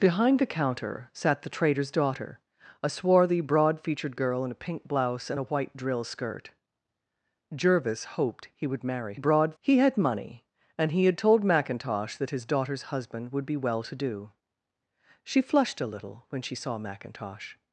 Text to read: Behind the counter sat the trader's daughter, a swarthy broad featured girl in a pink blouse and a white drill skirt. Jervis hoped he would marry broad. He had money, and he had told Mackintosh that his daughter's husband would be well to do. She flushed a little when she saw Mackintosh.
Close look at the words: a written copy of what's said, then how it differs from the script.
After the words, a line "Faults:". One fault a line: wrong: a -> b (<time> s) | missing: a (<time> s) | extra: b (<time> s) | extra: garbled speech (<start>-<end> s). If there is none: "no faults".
Behind the counter sat the trader's daughter, a swarthy broad featured girl in a pink blouse and a white drill skirt. Jervis hoped he would marry broad. He had money, and he had told Mackintosh that his daughter's husband would be well to do. She flushed a little when she saw Mackintosh.
Faults:
no faults